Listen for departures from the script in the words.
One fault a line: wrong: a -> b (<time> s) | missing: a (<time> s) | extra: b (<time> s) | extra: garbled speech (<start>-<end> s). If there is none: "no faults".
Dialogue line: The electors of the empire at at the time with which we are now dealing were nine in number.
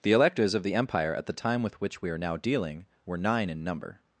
missing: at (1.3 s)